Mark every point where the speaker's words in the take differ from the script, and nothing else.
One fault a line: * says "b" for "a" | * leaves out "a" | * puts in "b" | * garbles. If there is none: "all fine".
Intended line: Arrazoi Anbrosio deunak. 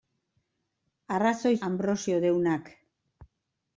all fine